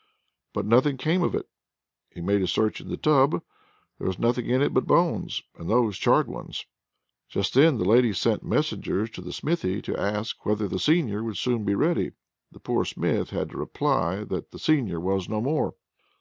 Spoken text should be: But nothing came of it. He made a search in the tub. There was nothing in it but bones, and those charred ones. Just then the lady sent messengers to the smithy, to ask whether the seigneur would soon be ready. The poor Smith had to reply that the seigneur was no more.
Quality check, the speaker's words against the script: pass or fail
pass